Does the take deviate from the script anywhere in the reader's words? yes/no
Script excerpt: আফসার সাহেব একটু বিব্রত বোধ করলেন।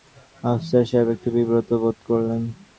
no